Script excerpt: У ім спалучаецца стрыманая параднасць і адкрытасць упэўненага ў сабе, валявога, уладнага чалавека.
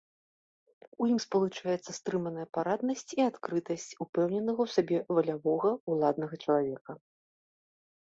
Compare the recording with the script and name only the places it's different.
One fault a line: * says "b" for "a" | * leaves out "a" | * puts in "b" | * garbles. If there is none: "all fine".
all fine